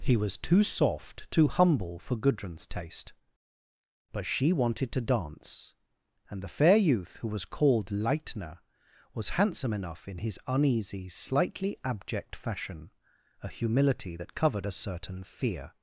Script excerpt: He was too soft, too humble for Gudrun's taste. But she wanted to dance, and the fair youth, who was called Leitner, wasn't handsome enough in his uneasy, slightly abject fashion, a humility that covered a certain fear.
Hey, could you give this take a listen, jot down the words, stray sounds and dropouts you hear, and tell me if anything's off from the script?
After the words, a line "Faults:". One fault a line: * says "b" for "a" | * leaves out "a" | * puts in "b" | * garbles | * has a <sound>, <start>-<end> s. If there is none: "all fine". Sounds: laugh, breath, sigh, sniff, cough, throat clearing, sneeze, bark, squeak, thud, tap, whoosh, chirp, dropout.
He was too soft, too humble for Gudrun's taste. But she wanted to dance, and the fair youth, who was called Leitner, was handsome enough in his uneasy, slightly abject fashion, a humility that covered a certain fear.
Faults:
* says "was" for "wasn't"